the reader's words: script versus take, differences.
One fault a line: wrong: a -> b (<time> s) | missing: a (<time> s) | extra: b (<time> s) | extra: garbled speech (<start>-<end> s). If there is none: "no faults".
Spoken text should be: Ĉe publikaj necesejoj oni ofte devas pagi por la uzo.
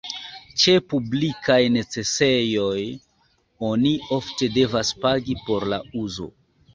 no faults